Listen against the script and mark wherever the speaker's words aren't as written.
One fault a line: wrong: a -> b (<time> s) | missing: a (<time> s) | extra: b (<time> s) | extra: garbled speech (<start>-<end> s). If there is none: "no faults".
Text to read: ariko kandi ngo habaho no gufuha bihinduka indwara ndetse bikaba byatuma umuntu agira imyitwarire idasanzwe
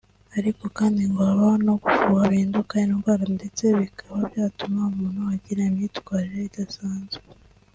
no faults